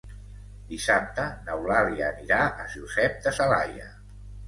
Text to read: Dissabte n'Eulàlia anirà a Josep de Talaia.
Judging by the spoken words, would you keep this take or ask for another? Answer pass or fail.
pass